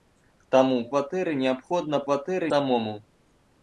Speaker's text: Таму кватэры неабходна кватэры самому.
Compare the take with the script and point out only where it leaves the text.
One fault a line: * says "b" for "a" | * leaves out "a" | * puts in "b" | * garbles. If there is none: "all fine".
all fine